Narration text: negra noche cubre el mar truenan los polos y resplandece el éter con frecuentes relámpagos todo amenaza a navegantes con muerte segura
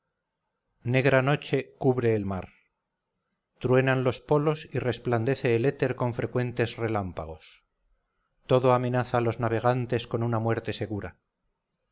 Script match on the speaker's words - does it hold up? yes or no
no